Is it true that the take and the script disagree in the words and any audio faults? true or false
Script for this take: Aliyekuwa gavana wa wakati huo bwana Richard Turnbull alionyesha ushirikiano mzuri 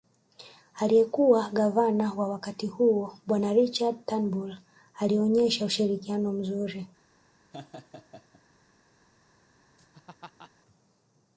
true